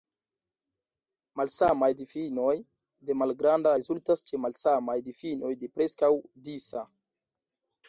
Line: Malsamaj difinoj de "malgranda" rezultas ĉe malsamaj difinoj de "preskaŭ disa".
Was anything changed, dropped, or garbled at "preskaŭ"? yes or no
no